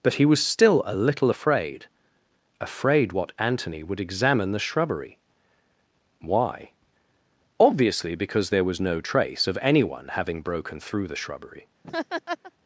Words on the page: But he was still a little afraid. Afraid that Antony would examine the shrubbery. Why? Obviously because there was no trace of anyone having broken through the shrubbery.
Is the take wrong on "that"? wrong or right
wrong